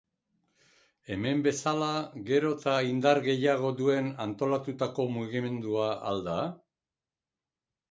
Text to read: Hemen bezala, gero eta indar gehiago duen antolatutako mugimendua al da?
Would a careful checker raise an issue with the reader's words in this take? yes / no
no